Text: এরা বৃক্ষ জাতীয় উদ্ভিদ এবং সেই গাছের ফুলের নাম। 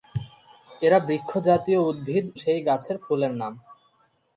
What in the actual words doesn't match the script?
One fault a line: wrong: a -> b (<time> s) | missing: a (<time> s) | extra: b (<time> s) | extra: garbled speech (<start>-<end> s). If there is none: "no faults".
missing: এবং (2.2 s)